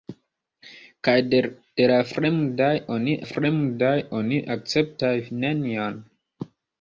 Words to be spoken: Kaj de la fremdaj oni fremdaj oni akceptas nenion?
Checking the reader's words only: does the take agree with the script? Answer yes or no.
yes